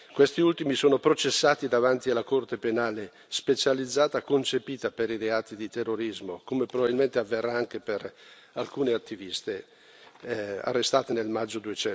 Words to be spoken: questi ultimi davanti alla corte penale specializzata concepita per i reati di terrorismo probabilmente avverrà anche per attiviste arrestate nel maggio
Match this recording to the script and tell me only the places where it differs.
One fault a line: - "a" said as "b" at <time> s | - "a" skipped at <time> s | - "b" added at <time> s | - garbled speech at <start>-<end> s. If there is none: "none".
- "sono processati" added at 0.8 s
- "come" added at 6.4 s
- "alcune" added at 8.5 s